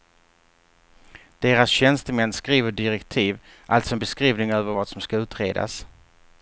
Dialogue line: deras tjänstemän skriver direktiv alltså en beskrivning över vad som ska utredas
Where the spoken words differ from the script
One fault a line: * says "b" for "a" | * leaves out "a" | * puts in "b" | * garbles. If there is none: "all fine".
all fine